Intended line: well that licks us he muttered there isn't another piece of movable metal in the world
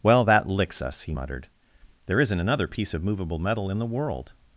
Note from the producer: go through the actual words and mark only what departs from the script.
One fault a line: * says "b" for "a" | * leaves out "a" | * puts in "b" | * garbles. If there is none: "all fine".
all fine